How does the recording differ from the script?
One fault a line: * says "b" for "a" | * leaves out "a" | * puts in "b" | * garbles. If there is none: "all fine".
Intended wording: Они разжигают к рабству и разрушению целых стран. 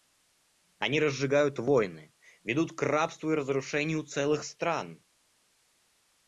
* puts in "войны ведут"